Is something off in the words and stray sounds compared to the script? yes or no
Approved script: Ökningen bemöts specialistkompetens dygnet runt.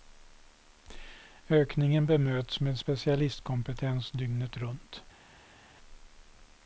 yes